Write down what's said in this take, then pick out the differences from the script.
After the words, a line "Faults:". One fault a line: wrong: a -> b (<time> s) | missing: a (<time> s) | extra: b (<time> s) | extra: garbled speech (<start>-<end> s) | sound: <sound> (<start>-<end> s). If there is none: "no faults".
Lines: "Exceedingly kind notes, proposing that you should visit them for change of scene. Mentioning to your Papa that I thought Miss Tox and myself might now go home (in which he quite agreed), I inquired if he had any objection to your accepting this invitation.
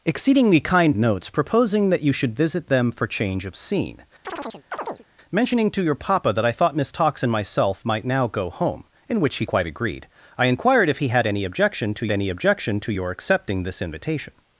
"Exceedingly kind notes, proposing that you should visit them for change of scene. Mentioning to your Papa that I thought Miss Tox and myself might now go home (in which he quite agreed), I inquired if he had any objection to any objection to your accepting this invitation.
Faults:
sound: chirp (4.2-5.0 s)
extra: any objection to (12.1 s)